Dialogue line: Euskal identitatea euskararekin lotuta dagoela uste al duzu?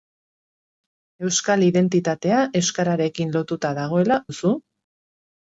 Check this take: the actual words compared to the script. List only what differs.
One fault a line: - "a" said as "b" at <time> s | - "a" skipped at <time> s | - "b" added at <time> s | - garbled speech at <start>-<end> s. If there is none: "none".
- "uste al" skipped at 4.2 s